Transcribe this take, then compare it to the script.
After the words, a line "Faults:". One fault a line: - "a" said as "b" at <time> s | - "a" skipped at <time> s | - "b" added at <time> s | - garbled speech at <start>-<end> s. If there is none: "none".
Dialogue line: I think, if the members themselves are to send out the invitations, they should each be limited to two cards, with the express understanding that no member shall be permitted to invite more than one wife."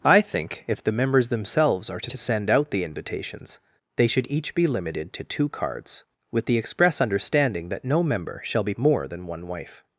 I think, if the members themselves are to to send out the invitations, they should each be limited to two cards, with the express understanding that no member shall be more than one wife."
Faults:
- "to" added at 2.1 s
- "permitted to invite" skipped at 8.7 s